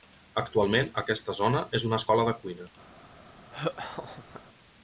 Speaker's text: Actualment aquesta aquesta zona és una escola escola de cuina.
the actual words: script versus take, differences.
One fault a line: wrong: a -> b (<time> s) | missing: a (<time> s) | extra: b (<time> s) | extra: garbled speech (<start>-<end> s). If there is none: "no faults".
missing: aquesta (1.4 s)
missing: escola (2.3 s)